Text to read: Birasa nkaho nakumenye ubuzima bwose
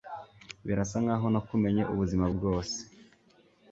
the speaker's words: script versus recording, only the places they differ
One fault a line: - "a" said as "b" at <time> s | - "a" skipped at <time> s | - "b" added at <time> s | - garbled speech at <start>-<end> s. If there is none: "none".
none